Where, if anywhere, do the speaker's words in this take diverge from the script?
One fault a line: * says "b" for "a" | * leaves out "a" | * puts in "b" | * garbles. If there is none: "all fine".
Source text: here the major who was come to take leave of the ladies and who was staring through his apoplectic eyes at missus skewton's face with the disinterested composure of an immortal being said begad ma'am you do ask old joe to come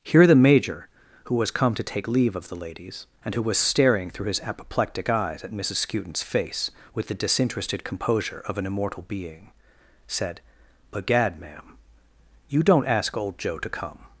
* says "don't" for "do"